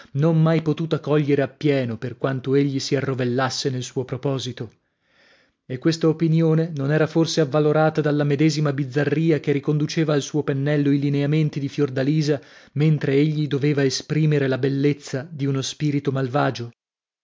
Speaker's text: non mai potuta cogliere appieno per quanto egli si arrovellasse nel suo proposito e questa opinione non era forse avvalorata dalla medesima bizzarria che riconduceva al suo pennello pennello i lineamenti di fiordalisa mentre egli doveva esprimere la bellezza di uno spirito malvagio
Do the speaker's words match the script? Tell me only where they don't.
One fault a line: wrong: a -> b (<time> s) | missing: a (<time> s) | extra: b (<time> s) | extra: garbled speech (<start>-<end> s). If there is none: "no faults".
missing: pennello (10.9 s)